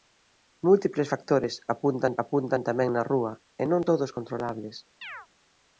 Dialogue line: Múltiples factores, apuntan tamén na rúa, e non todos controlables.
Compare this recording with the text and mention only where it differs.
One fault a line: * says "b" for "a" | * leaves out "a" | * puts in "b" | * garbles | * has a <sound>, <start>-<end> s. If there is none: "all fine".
* puts in "apuntan"
* has a chirp, 5.0-5.3 s